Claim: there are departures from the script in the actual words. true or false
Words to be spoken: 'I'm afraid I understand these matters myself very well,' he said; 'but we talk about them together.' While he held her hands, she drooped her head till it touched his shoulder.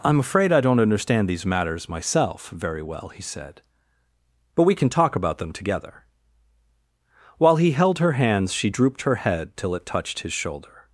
true